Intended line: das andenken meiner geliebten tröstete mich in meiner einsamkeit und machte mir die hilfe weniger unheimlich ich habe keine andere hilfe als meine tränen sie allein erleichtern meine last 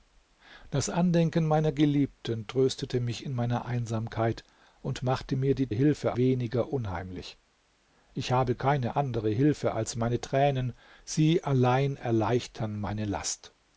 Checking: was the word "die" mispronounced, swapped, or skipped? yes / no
no